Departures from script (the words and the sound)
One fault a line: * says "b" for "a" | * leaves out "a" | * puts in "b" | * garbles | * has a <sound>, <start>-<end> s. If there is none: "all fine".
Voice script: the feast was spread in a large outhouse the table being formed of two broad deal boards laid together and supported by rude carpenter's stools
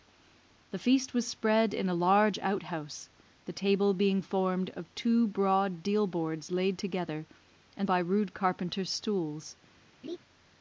* leaves out "supported"
* has a laugh, 10.0-10.2 s